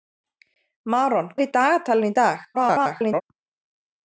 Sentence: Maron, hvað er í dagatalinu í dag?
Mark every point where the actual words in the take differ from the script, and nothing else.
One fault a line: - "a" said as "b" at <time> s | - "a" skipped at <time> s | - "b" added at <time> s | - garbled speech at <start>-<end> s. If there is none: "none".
- "hvað" skipped at 1.3 s
- garbled speech at 2.5-3.2 s